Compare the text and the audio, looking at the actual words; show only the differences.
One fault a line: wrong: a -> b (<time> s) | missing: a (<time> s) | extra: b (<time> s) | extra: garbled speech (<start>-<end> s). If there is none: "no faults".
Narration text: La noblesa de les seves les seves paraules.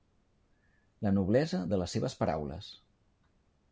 missing: les seves (2.2 s)